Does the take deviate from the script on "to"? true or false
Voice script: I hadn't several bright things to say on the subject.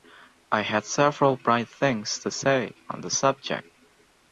false